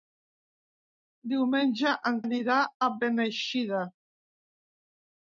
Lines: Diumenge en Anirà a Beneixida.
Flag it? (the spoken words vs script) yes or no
no